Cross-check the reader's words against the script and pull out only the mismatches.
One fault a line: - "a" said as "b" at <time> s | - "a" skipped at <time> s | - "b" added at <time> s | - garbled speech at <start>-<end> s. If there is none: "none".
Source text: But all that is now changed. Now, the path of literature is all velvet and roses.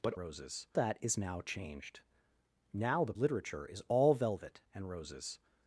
- "all" said as "roses" at 0.2 s
- "path of" skipped at 3.1 s